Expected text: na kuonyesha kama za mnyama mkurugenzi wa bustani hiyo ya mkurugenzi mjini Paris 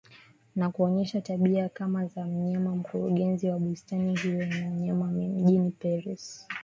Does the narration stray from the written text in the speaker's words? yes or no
yes